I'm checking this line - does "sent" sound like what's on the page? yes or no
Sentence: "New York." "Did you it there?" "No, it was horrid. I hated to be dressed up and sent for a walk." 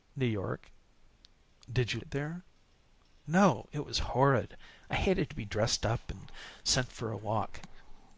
yes